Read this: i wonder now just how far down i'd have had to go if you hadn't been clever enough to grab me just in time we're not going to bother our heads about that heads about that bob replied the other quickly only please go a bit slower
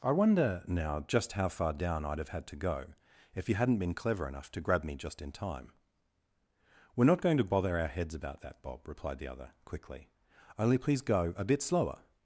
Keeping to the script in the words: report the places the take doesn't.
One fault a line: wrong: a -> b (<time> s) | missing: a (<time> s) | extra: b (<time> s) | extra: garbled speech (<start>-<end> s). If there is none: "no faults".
missing: heads about that (8.6 s)